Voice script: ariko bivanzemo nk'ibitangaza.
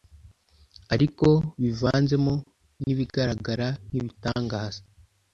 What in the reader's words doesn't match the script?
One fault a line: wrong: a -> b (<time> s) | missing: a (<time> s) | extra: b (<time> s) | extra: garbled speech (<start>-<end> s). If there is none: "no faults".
extra: n'ibigaragara (2.8 s)